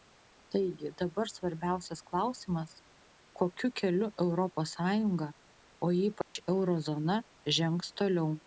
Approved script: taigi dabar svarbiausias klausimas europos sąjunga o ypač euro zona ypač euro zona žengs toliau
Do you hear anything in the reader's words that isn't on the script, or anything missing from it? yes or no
yes